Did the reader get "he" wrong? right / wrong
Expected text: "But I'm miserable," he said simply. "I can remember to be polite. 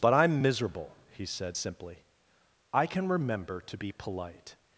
right